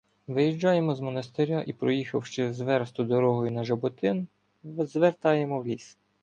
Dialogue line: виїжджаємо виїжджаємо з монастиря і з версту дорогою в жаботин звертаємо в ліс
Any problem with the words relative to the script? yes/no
yes